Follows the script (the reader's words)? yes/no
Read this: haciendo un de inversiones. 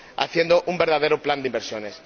no